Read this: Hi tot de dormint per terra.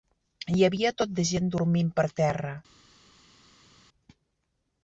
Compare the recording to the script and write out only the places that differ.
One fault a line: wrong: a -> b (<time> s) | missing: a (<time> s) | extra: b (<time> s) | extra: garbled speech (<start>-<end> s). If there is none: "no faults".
extra: havia (0.7 s)
extra: gent (1.3 s)